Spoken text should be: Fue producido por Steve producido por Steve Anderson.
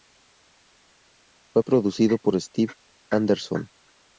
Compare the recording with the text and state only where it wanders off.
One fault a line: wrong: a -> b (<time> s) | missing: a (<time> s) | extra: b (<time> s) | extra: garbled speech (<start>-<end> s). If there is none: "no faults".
missing: producido por Steve (2.7 s)